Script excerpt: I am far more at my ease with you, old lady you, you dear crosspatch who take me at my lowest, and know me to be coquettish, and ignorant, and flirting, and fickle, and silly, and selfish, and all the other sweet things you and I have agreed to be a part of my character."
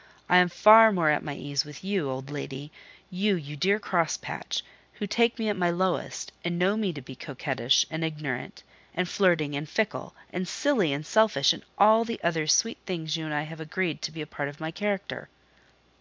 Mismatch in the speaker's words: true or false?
false